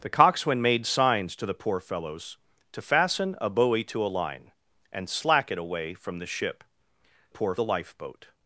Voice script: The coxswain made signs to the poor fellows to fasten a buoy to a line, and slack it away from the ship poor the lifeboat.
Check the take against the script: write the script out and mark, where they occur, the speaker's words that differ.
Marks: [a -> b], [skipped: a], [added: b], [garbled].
The coxswain made signs to the poor fellows to fasten a buoy to a line, and slack it away from the ship poor the lifeboat.